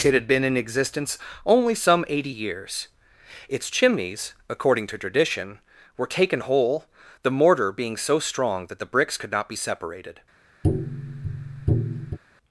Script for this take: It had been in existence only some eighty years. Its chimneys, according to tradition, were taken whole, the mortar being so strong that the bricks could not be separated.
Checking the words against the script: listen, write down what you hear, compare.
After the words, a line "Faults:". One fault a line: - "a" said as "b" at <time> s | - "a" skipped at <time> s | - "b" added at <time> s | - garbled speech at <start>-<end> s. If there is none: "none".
It had been in existence only some eighty years. Its chimneys, according to tradition, were taken whole, the mortar being so strong that the bricks could not be separated.
Faults:
none